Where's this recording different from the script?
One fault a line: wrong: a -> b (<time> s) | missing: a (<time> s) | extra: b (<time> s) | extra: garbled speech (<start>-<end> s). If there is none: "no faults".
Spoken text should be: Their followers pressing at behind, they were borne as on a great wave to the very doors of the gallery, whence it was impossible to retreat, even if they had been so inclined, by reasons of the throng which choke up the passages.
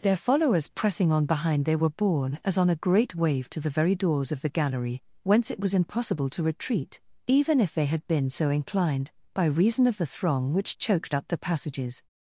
wrong: at -> on (1.1 s)
wrong: reasons -> reason (9.4 s)
wrong: choke -> choked (10.8 s)